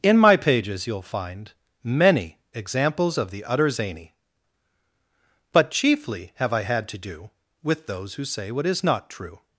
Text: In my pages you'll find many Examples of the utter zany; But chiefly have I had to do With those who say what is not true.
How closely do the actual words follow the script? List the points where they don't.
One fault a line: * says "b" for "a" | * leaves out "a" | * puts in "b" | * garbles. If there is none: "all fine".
all fine